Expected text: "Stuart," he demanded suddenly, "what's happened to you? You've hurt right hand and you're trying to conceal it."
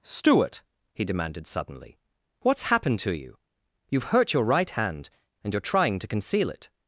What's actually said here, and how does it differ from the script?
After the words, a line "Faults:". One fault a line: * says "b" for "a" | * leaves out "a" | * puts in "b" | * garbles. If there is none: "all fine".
"Stuart," he demanded suddenly, "what's happened to you? You've hurt your right hand and you're trying to conceal it."
Faults:
* puts in "your"